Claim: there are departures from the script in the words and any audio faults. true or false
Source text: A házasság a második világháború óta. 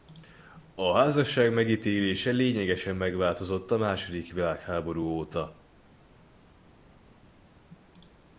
true